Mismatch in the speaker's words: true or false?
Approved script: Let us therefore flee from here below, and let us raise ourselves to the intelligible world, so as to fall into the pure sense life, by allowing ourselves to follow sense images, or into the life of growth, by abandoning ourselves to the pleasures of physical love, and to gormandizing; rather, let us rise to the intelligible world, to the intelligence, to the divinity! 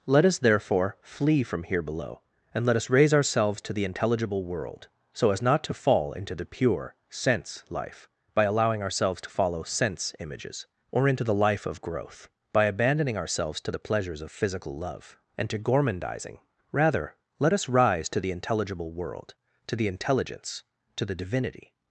true